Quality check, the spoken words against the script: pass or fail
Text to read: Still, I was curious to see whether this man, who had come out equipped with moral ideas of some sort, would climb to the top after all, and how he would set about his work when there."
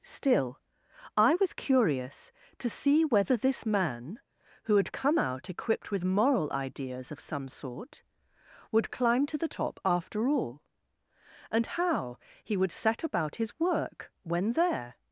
pass